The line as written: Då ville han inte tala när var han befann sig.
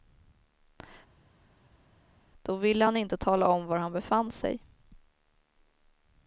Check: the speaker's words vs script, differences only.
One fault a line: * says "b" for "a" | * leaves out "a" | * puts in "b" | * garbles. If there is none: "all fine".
* says "om" for "när"